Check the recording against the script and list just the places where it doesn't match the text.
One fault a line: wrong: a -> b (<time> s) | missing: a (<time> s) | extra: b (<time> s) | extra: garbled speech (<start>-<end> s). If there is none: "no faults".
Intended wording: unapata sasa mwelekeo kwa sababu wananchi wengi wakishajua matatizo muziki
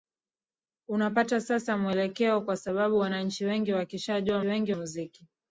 wrong: matatizo -> wengi (4.4 s)